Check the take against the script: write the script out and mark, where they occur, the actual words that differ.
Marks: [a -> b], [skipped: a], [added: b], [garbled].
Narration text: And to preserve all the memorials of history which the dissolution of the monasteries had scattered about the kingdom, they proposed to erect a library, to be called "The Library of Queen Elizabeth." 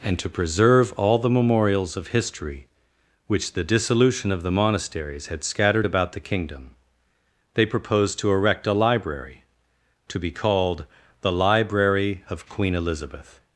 And to preserve all the memorials of history which the dissolution of the monasteries had scattered about the kingdom, they proposed to erect a library, to be called "The Library of Queen Elizabeth."